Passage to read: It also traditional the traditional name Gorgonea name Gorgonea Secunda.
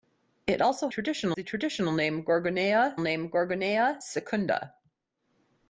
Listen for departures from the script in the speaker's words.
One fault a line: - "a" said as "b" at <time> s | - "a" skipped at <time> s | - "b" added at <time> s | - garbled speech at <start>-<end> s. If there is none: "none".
none